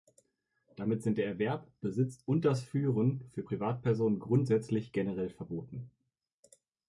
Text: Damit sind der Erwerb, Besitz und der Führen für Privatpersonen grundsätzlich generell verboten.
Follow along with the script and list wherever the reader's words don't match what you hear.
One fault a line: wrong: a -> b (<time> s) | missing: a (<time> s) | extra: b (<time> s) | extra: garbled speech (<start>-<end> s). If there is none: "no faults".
wrong: der -> das (2.4 s)